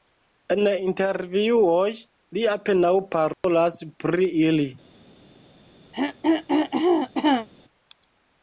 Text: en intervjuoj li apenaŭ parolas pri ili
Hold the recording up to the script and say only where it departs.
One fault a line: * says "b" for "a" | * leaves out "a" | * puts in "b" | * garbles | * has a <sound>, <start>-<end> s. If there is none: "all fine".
* has a dropout, 3.3-3.4 s
* has a throat clearing, 5.9-7.5 s